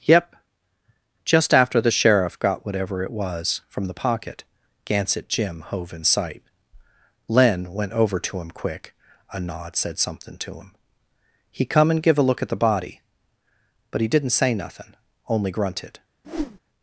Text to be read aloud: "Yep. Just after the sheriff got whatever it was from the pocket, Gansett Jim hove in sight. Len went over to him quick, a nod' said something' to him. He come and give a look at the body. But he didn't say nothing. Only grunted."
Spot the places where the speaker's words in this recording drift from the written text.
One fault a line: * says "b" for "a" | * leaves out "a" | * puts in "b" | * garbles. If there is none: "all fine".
all fine